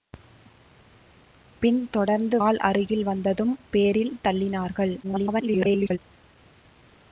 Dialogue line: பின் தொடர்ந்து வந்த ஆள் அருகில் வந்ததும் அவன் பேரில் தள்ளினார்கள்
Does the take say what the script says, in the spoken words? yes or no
no